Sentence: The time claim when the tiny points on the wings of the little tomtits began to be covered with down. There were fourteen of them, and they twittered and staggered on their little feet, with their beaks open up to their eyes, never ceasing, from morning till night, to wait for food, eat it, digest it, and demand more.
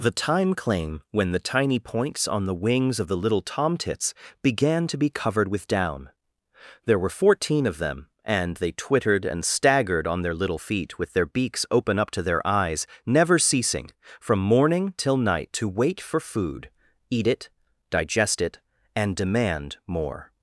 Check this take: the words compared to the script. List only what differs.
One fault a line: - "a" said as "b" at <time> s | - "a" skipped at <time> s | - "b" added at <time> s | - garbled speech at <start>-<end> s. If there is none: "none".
none